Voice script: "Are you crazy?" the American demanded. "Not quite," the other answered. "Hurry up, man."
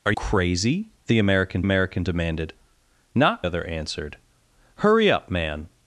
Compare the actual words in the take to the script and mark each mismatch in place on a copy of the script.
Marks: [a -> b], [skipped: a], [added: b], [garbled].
"Are [skipped: you] crazy?" the American [added: American] demanded. "Not [skipped: quite," the] other answered. "Hurry up, man."